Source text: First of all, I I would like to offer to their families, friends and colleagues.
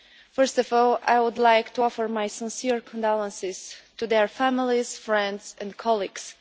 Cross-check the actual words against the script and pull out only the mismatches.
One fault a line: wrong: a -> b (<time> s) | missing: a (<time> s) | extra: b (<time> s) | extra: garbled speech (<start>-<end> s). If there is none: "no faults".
missing: I (1.2 s)
extra: my sincere condolences (2.1 s)